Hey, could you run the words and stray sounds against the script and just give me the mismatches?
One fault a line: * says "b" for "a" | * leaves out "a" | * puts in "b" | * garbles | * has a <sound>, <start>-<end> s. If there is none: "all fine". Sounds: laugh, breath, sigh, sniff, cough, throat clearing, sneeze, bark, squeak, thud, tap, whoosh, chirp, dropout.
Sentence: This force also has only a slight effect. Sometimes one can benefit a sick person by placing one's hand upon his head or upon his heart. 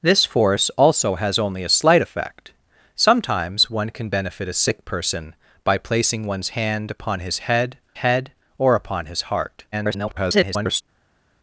* puts in "head"
* garbles